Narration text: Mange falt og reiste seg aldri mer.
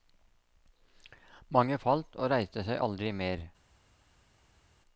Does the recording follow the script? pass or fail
pass